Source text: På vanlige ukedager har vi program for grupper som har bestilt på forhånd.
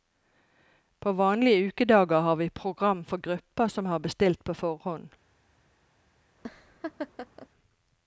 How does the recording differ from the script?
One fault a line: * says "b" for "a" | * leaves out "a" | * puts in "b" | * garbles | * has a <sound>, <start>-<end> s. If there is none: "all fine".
* has a laugh, 6.4-7.5 s